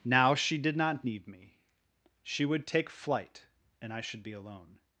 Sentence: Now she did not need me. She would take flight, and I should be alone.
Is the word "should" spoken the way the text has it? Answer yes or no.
yes